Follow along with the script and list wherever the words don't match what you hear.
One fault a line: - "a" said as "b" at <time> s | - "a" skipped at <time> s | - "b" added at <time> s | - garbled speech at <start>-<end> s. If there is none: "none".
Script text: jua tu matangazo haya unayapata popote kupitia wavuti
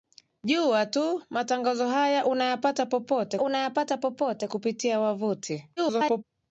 - "unayapata popote" added at 3.4 s
- garbled speech at 5.8-6.2 s